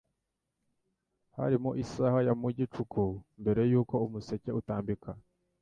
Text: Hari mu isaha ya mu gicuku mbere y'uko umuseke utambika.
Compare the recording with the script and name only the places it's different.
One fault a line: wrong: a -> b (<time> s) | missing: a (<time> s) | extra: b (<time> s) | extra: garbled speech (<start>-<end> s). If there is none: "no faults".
no faults